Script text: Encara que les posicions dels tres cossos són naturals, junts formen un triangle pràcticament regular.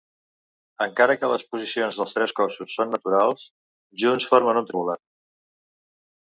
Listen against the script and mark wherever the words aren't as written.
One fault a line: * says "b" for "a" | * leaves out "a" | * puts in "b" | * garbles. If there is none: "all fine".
* leaves out "triangle pràcticament"